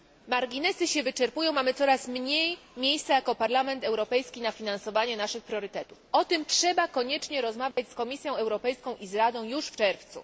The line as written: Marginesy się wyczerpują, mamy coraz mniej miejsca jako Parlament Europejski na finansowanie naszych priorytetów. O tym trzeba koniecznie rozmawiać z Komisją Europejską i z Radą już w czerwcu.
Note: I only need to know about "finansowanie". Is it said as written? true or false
true